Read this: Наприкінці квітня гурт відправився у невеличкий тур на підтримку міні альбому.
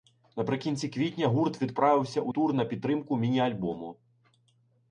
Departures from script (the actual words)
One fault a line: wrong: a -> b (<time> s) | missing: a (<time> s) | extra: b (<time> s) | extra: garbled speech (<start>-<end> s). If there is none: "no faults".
missing: невеличкий (2.3 s)